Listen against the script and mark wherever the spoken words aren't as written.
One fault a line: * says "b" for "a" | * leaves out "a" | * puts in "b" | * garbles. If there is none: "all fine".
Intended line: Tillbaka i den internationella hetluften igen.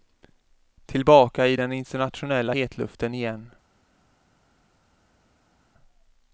all fine